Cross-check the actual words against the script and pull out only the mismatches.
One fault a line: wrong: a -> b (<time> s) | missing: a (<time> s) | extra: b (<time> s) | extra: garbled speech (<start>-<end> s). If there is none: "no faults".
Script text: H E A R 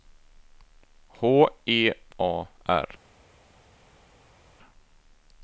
no faults